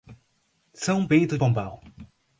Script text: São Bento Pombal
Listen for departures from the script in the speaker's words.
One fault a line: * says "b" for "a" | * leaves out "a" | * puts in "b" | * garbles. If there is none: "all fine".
all fine